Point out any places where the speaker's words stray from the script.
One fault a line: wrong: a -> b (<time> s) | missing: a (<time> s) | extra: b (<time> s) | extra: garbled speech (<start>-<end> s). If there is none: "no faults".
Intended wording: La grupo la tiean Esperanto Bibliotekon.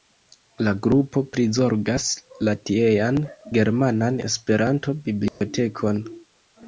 extra: prizorgas (1.4 s)
extra: Germanan (3.6 s)